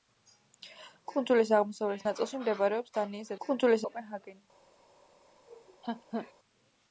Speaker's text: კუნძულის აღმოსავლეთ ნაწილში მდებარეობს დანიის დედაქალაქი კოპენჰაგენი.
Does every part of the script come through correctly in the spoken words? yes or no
no